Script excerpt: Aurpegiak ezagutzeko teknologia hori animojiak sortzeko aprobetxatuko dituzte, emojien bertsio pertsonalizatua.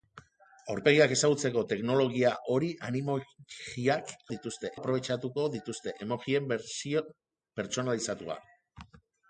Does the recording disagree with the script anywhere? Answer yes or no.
yes